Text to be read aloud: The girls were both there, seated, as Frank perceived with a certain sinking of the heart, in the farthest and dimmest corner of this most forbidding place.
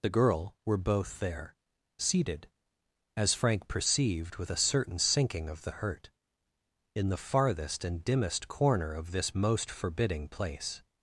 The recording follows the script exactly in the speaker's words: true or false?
false